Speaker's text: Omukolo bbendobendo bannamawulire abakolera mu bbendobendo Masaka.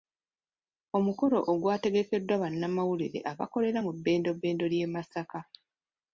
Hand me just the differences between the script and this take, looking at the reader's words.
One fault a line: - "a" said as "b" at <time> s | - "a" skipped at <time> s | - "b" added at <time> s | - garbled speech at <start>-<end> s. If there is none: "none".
- "bbendobendo" said as "ogwategekeddwa" at 1.5 s
- "ly'e" added at 4.7 s